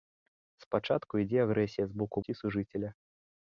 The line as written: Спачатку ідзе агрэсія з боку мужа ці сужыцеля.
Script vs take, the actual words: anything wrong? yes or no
yes